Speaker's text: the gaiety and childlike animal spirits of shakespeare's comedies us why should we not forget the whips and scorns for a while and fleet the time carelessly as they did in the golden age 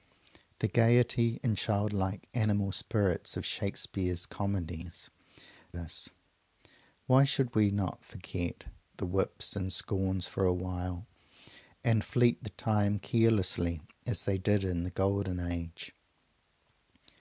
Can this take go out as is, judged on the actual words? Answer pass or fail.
pass